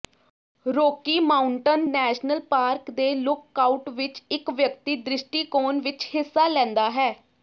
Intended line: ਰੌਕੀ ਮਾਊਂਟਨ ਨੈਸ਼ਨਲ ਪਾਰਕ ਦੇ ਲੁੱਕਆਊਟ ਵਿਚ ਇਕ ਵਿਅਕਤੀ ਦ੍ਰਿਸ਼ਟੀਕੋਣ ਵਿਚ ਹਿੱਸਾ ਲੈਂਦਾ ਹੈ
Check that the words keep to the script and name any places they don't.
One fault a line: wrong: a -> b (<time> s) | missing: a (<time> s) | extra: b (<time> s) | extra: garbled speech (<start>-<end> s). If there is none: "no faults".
no faults